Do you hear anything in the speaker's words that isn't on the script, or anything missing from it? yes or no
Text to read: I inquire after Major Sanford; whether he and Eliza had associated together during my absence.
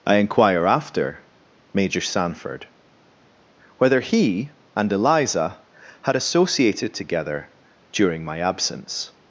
no